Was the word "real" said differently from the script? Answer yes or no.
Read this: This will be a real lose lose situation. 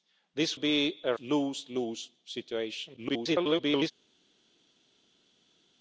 yes